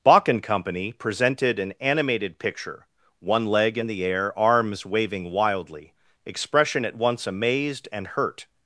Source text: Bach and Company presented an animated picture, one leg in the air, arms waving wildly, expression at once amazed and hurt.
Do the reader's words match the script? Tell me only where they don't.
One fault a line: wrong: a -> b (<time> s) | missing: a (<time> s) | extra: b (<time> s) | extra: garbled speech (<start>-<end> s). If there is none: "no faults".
no faults